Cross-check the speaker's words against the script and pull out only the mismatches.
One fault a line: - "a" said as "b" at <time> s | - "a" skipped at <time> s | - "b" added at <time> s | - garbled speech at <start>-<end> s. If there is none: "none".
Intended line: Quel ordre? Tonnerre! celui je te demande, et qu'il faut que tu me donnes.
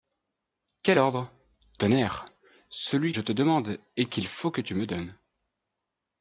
none